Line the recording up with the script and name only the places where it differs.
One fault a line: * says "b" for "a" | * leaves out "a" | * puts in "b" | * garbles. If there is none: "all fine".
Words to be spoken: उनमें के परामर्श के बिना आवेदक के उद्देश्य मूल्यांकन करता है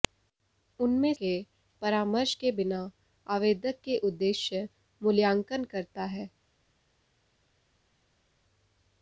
all fine